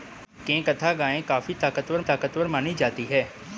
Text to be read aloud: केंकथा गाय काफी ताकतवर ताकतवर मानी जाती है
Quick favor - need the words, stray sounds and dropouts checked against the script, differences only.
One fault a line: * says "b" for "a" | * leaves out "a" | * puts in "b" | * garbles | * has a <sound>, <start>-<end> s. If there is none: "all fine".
all fine